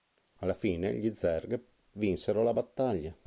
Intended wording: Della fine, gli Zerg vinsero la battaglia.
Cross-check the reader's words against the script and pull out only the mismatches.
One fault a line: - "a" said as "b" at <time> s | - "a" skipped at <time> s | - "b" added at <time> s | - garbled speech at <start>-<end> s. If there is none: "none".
- "Della" said as "Alla" at 0.4 s